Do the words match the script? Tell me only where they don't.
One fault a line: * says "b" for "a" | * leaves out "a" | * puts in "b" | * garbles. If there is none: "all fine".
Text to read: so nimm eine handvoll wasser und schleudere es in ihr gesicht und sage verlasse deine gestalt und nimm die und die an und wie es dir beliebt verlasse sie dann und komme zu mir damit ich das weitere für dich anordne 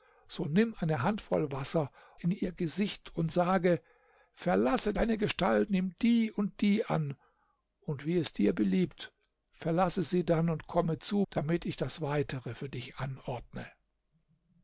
* leaves out "und schleudere es"
* leaves out "und"
* leaves out "mir"